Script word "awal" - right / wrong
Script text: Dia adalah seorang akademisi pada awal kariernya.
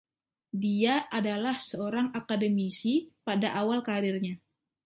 right